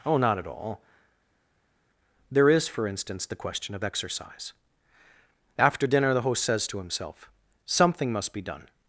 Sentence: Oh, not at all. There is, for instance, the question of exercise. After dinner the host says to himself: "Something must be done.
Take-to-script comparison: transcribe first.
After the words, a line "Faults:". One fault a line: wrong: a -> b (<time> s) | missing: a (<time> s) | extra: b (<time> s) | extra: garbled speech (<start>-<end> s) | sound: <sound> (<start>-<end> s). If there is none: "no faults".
Oh, not at all. There is, for instance, the question of exercise. After dinner the host says to himself: "Something must be done.
Faults:
no faults